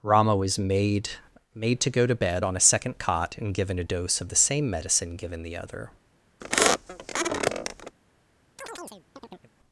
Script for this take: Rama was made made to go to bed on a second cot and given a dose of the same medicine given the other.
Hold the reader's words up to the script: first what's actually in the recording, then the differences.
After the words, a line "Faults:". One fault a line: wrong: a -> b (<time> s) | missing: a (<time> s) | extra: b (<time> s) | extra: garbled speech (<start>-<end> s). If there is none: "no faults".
Rama was made made to go to bed on a second cot and given a dose of the same medicine given the other.
Faults:
no faults